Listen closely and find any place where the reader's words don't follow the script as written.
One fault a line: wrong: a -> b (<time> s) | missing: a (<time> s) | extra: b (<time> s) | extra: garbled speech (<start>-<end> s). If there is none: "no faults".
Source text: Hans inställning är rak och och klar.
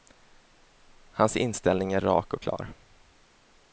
missing: och (2.4 s)